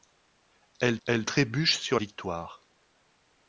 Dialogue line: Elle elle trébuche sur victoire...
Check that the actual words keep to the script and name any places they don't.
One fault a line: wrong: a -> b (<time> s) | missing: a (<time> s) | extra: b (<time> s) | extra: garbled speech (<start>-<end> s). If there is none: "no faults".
no faults